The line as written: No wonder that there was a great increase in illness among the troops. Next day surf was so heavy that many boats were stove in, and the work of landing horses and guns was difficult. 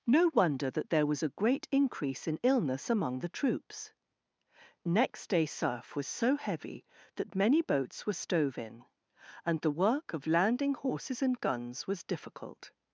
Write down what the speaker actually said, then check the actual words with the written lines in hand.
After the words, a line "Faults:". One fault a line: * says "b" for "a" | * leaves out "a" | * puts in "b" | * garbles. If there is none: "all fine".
No wonder that there was a great increase in illness among the troops. Next day surf was so heavy that many boats were stove in, and the work of landing horses and guns was difficult.
Faults:
all fine